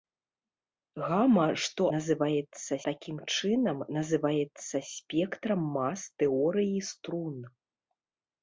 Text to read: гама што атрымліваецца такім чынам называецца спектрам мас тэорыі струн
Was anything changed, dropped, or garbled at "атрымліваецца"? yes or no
yes